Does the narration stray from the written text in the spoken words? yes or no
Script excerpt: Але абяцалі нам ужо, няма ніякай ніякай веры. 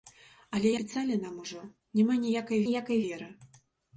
no